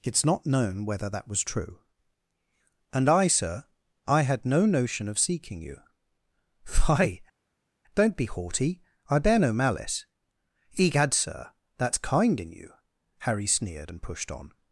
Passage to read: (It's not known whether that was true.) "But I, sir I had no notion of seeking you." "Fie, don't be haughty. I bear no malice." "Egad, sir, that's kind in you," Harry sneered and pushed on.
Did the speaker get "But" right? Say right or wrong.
wrong